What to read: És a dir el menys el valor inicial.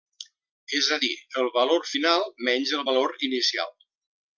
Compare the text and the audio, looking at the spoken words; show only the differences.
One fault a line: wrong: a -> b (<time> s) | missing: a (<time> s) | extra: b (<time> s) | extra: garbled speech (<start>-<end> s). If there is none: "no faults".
extra: valor final (1.6 s)